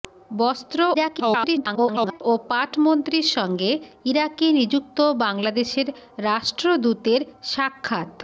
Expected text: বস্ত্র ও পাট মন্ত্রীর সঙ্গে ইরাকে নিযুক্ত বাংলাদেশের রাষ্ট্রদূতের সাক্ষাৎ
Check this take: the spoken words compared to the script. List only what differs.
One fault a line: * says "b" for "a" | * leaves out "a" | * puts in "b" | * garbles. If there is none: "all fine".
* garbles